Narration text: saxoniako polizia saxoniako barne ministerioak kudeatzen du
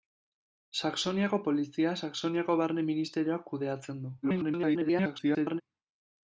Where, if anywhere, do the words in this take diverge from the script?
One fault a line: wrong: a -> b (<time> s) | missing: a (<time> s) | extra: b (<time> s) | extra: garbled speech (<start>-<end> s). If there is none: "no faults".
extra: garbled speech (4.2-5.6 s)